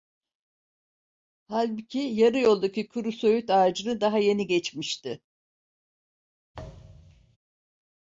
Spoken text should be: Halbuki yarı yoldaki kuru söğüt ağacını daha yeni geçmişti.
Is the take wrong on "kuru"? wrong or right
right